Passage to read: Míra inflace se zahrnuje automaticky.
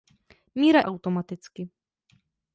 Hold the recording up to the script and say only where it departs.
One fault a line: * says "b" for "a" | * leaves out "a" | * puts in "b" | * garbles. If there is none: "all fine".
* leaves out "inflace se zahrnuje"